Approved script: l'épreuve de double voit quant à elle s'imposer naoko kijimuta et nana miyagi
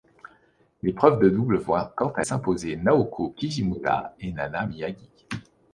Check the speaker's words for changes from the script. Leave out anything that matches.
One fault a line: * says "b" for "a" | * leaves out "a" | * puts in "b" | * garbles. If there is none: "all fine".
* leaves out "elle"